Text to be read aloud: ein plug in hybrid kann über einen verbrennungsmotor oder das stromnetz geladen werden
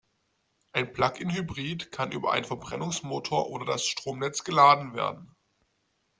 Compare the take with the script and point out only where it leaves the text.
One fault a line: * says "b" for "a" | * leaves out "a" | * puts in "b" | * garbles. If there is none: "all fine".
all fine